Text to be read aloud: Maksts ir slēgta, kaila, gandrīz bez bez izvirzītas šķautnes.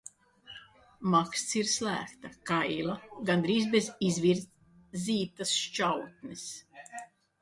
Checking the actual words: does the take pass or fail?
fail